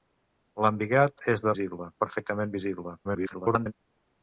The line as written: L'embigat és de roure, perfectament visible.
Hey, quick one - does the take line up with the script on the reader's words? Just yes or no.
no